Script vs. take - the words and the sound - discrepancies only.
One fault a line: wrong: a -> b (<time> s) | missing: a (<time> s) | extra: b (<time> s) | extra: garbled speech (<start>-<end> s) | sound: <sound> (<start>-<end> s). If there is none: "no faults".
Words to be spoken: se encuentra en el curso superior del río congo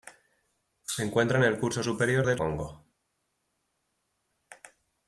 missing: río (2.4 s)